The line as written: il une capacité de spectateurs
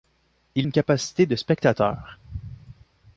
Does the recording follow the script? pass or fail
pass